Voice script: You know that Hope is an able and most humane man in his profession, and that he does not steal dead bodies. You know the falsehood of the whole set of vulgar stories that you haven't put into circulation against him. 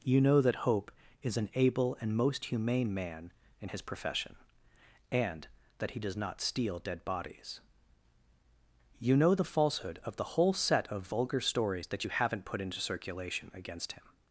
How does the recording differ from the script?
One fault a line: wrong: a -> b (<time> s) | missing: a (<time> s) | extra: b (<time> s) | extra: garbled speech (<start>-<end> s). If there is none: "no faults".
no faults